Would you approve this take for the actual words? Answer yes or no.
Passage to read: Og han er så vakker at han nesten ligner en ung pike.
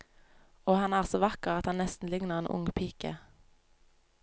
yes